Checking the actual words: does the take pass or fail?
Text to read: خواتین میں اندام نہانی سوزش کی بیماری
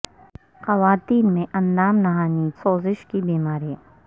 pass